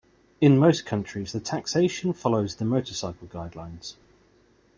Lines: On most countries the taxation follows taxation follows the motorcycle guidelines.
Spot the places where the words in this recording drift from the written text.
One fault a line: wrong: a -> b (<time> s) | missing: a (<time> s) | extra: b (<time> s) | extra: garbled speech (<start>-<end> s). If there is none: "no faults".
wrong: On -> In (0.4 s)
missing: taxation follows (2.5 s)